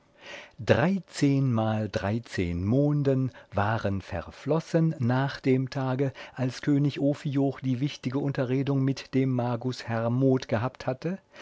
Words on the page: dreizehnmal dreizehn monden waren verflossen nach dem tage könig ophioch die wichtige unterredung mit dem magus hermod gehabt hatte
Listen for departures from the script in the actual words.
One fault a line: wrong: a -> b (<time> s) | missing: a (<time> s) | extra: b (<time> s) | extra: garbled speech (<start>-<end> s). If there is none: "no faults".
extra: als (6.3 s)